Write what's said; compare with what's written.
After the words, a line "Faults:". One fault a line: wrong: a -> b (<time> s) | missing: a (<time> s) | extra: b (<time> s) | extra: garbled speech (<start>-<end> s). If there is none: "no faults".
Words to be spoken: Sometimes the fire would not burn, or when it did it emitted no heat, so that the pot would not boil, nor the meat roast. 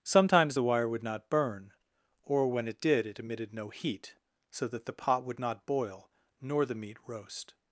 Sometimes the wire would not burn, or when it did it emitted no heat, so that the pot would not boil, nor the meat roast.
Faults:
wrong: fire -> wire (0.6 s)